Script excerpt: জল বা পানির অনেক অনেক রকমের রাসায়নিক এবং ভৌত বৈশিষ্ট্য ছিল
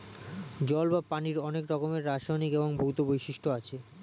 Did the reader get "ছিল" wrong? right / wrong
wrong